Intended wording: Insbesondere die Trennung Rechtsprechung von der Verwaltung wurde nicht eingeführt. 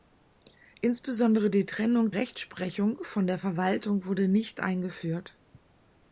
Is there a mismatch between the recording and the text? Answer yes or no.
no